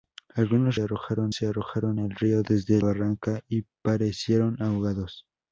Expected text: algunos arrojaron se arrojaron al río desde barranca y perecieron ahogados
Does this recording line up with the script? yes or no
yes